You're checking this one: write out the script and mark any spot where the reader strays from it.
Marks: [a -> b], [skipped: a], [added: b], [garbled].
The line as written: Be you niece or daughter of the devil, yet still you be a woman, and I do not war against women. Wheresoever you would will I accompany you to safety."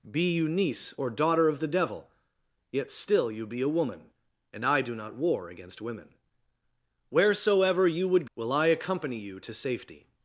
Be you niece or daughter of the devil, yet still you be a woman, and I do not war against women. Wheresoever you would will I accompany you to safety."